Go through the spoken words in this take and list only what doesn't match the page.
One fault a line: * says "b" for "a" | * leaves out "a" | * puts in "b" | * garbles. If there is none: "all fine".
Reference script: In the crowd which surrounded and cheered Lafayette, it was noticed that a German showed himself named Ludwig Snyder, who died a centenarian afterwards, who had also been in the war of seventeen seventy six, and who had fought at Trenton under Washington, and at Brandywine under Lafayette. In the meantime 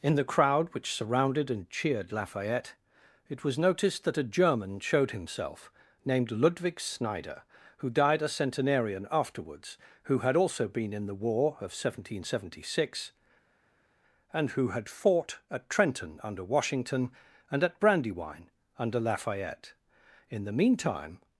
all fine